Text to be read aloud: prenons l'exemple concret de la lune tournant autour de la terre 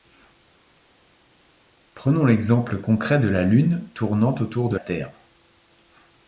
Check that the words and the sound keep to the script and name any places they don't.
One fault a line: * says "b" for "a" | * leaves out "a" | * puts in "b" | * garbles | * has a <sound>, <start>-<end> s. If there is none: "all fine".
* leaves out "la"